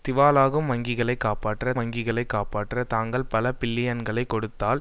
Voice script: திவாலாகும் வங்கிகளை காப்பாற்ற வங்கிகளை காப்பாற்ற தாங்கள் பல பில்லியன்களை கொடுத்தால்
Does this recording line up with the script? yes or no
yes